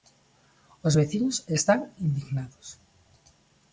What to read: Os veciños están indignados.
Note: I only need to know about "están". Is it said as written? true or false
true